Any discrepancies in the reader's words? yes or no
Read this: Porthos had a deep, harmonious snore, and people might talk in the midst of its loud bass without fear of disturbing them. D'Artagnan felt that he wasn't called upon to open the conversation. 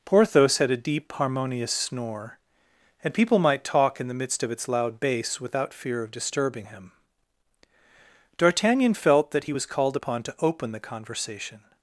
yes